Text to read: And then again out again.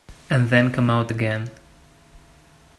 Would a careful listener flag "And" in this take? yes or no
no